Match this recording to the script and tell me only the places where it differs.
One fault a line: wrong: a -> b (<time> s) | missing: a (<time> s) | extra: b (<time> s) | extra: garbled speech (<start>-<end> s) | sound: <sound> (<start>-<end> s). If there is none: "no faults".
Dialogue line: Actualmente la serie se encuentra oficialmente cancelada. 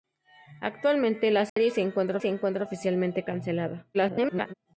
sound: dropout (1.5-1.6 s)
extra: se encuentra (2.2 s)
extra: garbled speech (3.9-4.5 s)